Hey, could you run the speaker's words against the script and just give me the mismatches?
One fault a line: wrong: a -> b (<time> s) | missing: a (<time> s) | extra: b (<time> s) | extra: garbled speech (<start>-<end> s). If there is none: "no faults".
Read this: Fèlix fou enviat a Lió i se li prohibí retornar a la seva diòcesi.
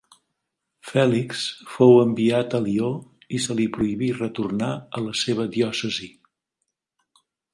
no faults